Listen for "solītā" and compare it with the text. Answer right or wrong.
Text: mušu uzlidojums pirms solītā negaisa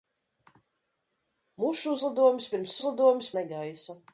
wrong